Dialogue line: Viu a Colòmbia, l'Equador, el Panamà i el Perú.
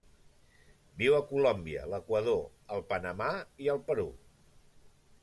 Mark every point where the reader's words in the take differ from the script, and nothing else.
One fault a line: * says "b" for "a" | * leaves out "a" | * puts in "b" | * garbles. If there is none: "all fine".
all fine